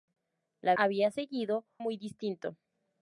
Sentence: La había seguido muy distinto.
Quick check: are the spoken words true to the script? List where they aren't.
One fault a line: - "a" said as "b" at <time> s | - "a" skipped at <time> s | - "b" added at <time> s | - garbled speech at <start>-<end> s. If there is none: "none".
none